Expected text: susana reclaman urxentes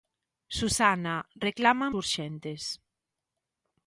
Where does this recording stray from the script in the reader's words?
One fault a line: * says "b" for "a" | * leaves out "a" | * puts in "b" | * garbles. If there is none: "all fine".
all fine